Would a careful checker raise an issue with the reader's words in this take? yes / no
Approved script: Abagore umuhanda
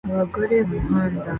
no